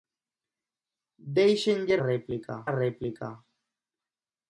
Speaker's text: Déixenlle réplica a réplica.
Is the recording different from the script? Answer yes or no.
no